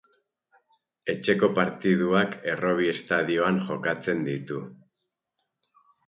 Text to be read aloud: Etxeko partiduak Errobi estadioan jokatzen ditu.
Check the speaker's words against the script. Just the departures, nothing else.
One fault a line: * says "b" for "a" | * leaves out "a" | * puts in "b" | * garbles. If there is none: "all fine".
all fine